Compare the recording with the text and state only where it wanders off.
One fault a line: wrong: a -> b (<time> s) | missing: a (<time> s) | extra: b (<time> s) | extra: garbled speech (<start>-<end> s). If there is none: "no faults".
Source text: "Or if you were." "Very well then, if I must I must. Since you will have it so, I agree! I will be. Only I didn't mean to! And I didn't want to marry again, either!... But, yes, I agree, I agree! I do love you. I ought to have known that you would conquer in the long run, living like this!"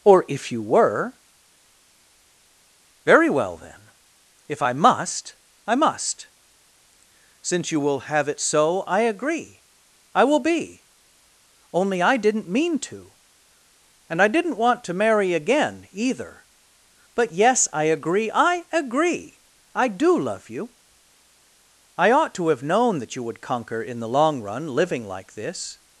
no faults